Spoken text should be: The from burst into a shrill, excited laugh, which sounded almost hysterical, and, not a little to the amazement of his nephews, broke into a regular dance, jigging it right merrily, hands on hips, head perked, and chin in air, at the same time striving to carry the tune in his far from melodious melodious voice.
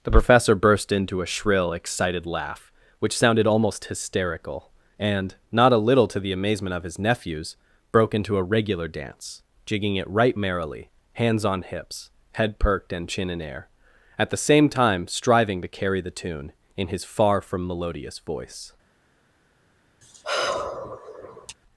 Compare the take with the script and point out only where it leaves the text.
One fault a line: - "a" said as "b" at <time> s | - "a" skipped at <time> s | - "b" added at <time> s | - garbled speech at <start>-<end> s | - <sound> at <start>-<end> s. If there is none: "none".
- "from" said as "professor" at 0.1 s
- "melodious" skipped at 18.2 s
- sigh at 20.0-21.6 s